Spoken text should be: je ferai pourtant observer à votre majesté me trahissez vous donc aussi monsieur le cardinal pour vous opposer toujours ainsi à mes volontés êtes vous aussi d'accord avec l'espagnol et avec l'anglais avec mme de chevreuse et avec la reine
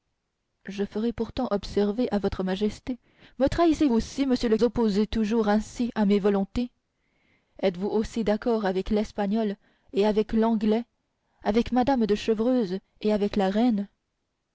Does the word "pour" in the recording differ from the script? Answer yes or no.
yes